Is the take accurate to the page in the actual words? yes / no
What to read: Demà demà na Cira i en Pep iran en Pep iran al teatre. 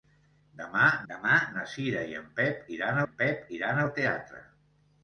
yes